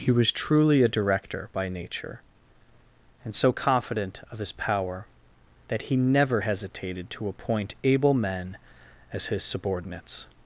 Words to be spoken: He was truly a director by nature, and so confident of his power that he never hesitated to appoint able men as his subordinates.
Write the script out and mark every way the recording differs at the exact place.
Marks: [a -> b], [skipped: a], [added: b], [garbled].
He was truly a director by nature, and so confident of his power that he never hesitated to appoint able men as his subordinates.